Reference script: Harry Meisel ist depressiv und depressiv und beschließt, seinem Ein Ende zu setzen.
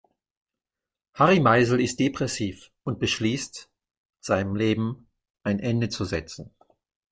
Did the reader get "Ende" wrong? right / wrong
right